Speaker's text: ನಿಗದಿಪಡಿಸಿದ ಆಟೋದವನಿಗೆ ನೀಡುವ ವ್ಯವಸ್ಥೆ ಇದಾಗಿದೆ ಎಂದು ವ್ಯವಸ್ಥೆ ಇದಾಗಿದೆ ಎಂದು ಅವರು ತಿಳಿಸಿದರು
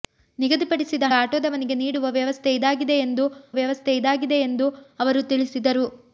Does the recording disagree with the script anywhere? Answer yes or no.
no